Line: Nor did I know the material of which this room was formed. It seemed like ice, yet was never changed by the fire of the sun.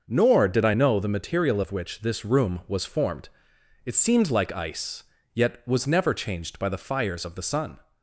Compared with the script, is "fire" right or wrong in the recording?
wrong